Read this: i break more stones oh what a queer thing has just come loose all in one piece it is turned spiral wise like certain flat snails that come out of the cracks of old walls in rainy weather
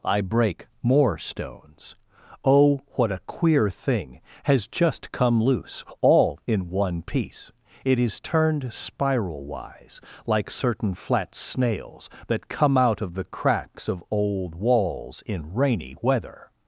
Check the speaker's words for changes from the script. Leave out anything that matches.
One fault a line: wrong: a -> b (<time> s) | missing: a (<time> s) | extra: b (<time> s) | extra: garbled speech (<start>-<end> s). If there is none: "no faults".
no faults